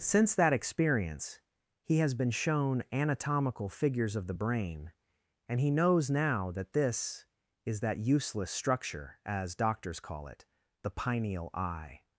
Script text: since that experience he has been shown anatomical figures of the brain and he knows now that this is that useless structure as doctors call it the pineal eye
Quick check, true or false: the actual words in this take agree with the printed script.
true